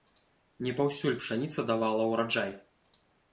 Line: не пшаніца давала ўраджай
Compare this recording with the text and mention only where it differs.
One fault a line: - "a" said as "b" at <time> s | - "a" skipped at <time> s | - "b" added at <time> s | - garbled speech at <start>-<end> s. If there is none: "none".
- "паўсюль" added at 0.8 s